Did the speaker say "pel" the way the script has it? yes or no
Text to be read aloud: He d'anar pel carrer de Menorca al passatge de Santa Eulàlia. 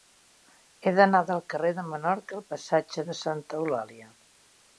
no